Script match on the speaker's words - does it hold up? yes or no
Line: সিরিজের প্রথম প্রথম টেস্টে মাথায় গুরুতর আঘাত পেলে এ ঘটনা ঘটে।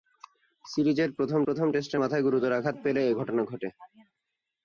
yes